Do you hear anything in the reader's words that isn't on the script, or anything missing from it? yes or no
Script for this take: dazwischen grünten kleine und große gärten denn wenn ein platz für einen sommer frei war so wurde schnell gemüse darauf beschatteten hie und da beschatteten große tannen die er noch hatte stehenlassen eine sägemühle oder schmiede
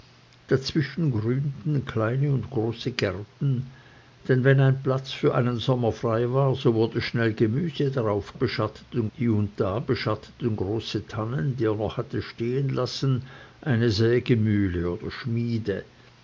no